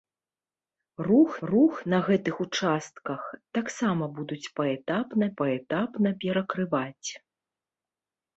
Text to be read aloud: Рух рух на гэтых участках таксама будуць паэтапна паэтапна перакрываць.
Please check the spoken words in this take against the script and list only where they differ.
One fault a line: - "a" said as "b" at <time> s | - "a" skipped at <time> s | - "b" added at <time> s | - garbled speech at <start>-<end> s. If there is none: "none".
none